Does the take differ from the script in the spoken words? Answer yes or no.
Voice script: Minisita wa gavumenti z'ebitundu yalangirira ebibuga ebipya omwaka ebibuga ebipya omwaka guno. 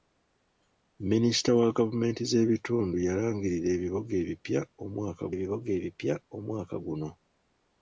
no